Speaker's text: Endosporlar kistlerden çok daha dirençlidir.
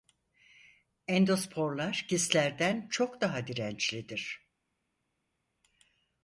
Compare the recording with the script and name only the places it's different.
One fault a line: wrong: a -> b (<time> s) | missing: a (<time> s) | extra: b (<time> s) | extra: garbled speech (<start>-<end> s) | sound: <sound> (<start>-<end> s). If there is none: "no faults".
no faults